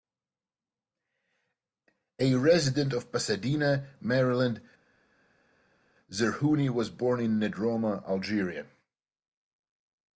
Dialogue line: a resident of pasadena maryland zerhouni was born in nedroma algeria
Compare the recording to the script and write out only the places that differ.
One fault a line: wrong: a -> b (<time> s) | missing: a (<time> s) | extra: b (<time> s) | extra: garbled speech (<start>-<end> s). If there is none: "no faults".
no faults